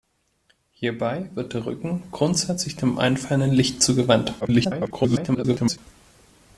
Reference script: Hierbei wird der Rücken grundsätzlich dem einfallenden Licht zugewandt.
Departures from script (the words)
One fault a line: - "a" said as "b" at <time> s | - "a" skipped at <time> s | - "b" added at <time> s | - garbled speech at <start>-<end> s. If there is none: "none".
- garbled speech at 4.4-5.8 s